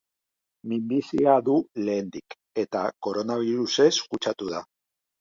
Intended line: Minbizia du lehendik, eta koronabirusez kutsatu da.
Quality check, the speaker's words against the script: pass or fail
pass